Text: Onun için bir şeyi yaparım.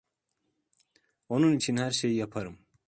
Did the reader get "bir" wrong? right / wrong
wrong